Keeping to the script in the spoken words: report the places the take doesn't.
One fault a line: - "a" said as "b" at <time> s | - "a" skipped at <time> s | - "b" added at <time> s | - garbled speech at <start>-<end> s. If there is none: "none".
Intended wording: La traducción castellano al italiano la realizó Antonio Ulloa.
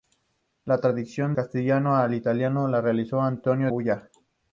none